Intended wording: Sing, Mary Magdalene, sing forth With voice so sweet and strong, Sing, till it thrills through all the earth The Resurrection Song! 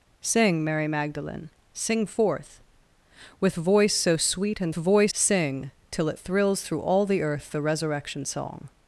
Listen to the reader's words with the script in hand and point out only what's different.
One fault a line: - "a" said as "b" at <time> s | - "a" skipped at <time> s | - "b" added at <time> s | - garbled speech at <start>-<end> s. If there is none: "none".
- "strong" said as "voice" at 4.7 s